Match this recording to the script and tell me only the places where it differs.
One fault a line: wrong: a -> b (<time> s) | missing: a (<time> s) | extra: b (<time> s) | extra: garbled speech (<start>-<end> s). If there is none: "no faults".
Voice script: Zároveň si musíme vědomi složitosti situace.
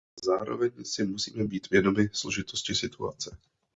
extra: být (1.4 s)